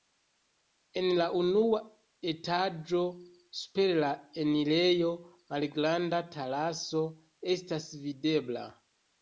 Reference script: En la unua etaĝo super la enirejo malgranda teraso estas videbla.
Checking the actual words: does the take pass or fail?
pass